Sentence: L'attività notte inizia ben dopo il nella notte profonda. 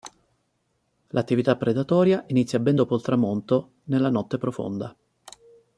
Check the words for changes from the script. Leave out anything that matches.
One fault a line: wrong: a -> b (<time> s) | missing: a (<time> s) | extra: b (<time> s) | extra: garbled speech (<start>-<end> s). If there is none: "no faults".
wrong: notte -> predatoria (1.6 s)
extra: tramonto (3.0 s)